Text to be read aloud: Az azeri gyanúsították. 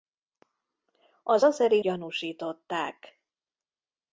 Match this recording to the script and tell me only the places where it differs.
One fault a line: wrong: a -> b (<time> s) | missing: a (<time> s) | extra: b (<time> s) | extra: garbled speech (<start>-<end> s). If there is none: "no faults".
no faults